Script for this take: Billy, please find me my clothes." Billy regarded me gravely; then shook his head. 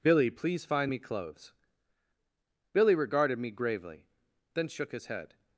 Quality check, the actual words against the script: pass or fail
fail